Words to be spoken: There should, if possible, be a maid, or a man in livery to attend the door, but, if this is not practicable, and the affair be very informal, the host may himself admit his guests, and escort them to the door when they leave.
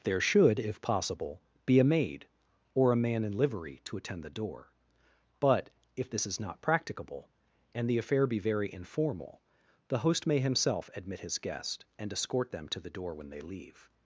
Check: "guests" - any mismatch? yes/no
yes